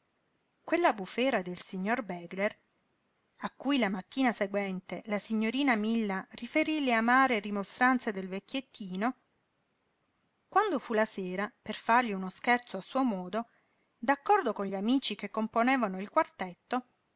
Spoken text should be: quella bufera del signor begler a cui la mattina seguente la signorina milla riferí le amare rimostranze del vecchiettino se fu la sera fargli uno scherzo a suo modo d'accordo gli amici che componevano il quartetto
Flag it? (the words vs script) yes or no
yes